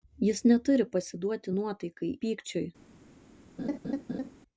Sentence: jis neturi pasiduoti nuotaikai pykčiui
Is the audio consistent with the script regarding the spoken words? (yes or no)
yes